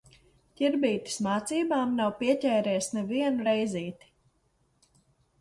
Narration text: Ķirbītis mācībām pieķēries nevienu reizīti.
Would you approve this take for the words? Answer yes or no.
no